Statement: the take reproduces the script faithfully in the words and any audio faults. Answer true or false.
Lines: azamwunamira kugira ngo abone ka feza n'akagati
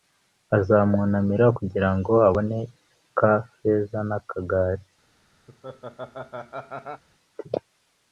false